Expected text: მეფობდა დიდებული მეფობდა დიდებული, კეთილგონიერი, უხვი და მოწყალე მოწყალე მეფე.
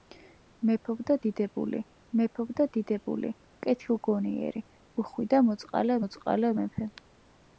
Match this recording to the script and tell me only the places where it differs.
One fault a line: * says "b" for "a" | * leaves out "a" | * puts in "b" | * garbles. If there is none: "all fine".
all fine